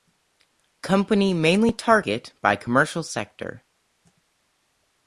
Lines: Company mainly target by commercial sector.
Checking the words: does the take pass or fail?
pass